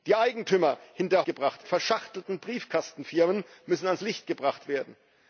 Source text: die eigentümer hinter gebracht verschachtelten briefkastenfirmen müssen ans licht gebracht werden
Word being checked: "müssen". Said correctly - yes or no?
yes